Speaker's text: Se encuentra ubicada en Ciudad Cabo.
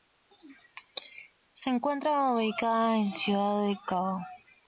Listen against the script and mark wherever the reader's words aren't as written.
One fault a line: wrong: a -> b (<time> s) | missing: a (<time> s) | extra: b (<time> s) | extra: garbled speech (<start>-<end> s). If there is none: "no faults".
extra: del (3.7 s)